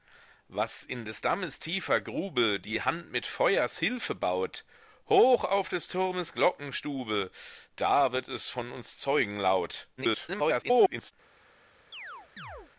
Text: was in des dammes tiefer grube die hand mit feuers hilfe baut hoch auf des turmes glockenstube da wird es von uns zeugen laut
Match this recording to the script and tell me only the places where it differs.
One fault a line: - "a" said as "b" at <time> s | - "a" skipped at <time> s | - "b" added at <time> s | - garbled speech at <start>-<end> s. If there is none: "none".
- garbled speech at 10.0-11.1 s